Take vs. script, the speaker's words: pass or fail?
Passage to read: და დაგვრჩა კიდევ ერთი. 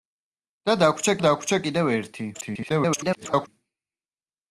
fail